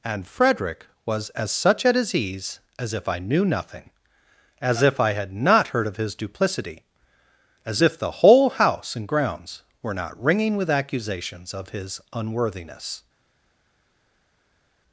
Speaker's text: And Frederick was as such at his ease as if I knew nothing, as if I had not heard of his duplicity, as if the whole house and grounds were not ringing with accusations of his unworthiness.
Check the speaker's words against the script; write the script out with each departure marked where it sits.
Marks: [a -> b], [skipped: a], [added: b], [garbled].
And Frederick was as such at his ease as if I knew nothing, as if I had not heard of his duplicity, as if the whole house and grounds were not ringing with accusations of his unworthiness.